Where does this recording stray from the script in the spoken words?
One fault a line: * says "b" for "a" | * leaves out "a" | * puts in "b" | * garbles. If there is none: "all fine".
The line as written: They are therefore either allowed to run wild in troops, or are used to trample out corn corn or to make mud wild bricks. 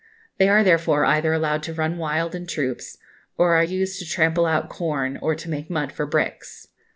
* leaves out "corn"
* says "for" for "wild"